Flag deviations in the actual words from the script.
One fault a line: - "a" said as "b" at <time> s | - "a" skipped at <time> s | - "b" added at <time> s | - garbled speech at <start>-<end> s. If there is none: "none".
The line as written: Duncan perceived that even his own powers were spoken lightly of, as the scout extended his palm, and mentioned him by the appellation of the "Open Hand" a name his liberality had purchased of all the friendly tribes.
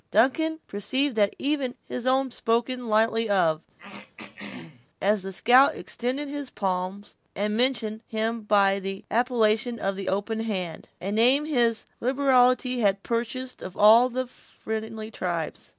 - "powers were" skipped at 2.3 s